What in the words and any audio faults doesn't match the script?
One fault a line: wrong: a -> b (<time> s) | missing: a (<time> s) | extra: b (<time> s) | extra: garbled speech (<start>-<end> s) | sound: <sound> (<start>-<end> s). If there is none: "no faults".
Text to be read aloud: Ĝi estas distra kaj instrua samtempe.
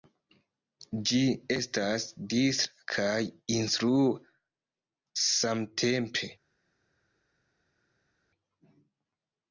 no faults